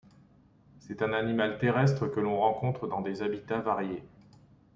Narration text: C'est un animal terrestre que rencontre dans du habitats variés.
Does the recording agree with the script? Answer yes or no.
no